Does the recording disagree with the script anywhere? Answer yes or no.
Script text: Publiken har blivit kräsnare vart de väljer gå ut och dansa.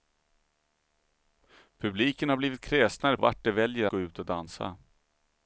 no